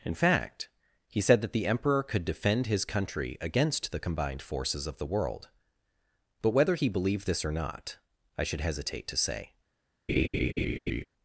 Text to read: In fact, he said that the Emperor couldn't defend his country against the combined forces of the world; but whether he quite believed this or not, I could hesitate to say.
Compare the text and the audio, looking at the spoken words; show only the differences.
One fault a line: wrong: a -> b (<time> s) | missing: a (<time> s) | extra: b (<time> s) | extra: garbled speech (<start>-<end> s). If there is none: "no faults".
wrong: couldn't -> could (2.0 s)
missing: quite (6.9 s)
wrong: could -> should (8.4 s)